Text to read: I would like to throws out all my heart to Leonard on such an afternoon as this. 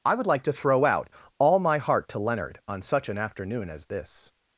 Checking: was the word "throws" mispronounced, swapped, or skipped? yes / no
yes